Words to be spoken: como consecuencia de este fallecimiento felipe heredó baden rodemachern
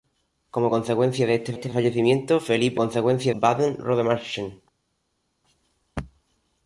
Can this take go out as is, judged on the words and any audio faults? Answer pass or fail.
fail